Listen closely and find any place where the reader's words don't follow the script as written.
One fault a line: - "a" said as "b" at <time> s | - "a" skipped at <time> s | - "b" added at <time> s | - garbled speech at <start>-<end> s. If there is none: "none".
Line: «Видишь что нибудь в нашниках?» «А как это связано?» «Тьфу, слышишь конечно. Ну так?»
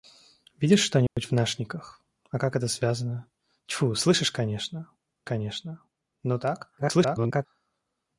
- "конечно" added at 5.2 s
- garbled speech at 6.8-7.5 s